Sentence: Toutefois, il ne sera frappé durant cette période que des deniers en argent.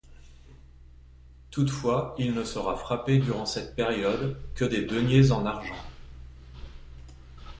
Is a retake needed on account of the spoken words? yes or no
no